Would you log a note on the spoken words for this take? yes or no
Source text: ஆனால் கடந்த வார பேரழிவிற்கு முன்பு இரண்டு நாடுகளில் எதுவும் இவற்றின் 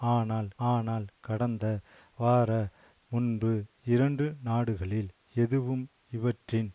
yes